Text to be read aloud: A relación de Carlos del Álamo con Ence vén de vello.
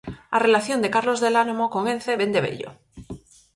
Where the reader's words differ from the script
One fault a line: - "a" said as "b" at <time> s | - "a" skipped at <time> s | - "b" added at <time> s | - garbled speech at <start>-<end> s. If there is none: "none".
none